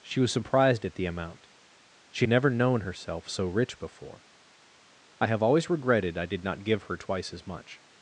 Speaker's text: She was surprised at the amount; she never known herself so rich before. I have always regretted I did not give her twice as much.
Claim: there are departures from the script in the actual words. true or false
false